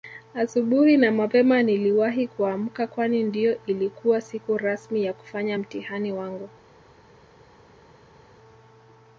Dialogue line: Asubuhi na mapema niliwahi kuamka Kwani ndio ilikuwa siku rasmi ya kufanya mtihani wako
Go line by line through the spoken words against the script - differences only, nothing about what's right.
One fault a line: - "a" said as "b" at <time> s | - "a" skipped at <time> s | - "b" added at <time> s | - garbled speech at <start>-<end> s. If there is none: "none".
- "wako" said as "wangu" at 6.1 s